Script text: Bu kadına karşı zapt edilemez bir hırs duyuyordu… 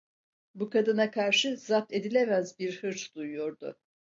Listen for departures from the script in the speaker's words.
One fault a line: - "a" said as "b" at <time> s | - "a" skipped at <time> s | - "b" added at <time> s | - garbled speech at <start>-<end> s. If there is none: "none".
none